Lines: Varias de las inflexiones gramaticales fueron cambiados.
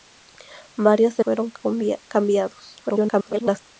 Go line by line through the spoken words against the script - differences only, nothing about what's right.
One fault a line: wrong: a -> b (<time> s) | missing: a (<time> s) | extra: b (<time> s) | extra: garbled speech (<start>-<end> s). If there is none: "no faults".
missing: las inflexiones gramaticales (1.2 s)
extra: garbled speech (2.8-3.6 s)